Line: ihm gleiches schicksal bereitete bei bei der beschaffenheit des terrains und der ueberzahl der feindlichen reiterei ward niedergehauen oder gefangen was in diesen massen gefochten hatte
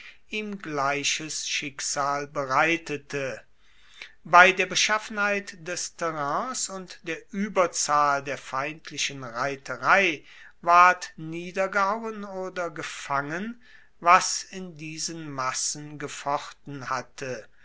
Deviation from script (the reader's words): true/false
true